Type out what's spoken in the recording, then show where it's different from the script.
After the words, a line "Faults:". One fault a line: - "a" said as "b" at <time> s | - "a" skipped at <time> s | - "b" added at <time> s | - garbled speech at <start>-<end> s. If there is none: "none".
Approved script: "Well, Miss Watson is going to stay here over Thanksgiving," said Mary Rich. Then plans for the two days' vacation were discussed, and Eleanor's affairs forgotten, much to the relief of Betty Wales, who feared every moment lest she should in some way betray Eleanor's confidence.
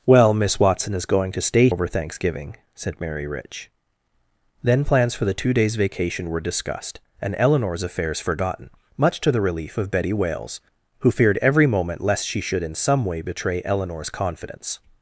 "Well, Miss Watson is going to stay over Thanksgiving," said Mary Rich. Then plans for the two days' vacation were discussed, and Eleanor's affairs forgotten, much to the relief of Betty Wales, who feared every moment lest she should in some way betray Eleanor's confidence.
Faults:
- "here" skipped at 1.7 s